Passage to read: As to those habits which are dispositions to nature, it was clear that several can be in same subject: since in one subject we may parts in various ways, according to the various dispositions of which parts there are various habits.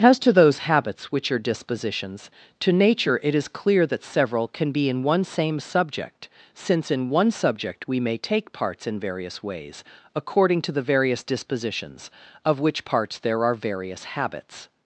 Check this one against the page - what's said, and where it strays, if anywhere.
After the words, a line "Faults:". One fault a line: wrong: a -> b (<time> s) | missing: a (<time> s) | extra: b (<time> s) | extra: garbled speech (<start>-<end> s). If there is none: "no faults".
As to those habits which are dispositions to nature, it is clear that several can be in one same subject: since in one subject we may take parts in various ways, according to the various dispositions of which parts there are various habits.
Faults:
wrong: was -> is (3.4 s)
extra: one (5.0 s)
extra: take (8.2 s)